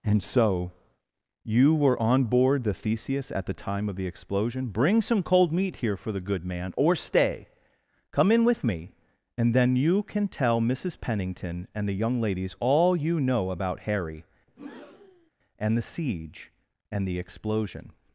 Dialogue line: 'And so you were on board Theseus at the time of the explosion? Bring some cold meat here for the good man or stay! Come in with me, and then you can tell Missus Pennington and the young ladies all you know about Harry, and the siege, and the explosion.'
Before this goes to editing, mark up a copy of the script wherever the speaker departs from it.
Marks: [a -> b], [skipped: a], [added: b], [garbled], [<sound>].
'And so you were on board [added: the] Theseus at the time of the explosion? Bring some cold meat here for the good man or stay! Come in with me, and then you can tell Missus Pennington and the young ladies all you know about Harry, [breath] and the siege, and the explosion.'